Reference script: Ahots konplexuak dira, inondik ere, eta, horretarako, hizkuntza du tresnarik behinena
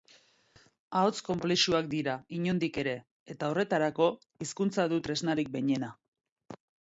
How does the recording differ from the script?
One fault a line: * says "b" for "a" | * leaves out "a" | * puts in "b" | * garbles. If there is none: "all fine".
all fine